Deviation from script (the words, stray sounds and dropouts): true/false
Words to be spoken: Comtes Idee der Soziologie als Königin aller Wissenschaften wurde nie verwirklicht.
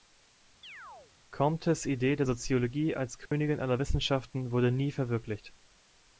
true